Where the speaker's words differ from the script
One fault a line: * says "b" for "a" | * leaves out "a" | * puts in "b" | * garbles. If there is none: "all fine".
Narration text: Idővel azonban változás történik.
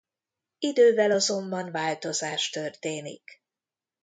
all fine